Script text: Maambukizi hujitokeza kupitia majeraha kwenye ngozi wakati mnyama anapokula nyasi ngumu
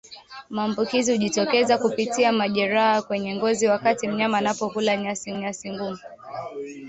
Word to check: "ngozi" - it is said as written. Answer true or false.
true